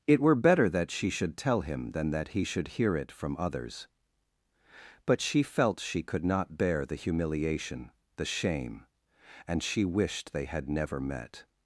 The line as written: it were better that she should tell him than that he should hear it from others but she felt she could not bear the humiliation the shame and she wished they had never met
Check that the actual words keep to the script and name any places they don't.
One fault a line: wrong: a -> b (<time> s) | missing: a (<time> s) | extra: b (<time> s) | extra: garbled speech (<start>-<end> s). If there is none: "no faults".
no faults